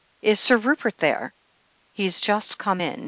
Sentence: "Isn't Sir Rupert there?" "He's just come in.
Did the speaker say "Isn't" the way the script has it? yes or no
no